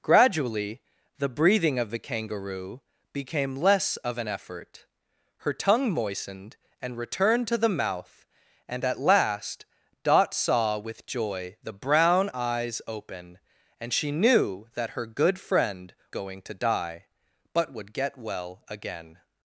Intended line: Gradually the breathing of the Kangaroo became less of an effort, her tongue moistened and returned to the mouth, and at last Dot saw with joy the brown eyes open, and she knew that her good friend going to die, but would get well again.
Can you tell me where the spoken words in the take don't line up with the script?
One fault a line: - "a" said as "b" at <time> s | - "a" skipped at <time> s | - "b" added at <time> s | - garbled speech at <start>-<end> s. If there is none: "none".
none